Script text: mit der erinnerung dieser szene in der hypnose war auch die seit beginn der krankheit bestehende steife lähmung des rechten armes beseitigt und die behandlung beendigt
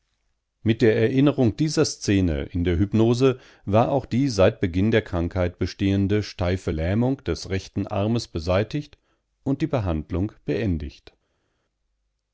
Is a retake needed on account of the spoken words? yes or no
no